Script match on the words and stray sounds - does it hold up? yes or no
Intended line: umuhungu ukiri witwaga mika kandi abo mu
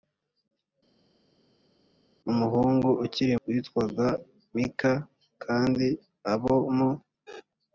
yes